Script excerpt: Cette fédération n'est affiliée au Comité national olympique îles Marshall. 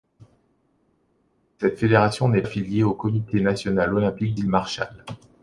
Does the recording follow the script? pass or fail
pass